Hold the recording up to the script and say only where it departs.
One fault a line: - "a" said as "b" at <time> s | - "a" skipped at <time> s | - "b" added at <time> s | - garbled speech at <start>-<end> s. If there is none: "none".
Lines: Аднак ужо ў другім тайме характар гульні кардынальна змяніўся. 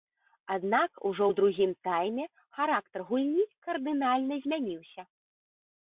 none